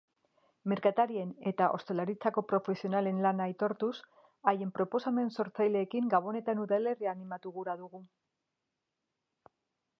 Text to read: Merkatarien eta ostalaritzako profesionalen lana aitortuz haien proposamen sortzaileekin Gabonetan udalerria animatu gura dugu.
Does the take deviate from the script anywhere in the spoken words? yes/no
no